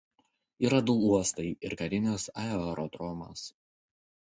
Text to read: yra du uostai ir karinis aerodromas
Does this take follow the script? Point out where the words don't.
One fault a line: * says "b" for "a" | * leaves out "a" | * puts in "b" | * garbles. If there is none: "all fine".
all fine